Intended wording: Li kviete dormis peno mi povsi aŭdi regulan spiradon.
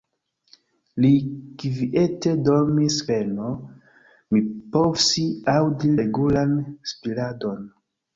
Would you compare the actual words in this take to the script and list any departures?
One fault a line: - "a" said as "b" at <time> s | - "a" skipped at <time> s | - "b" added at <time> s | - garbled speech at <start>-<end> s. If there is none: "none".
none